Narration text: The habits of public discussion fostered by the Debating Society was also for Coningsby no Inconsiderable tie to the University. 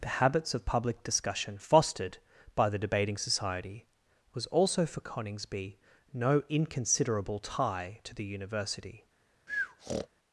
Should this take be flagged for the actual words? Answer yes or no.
no